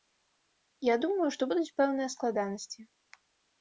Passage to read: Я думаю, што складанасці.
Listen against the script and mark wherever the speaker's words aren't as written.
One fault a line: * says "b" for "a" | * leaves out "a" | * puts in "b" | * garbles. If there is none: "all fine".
* puts in "будуць пэўныя"